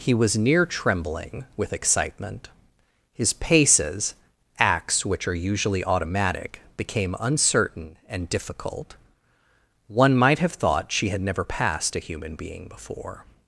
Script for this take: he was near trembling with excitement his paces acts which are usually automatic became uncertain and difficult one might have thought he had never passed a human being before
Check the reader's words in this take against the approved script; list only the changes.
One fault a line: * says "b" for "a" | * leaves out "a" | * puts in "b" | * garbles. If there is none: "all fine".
* says "she" for "he"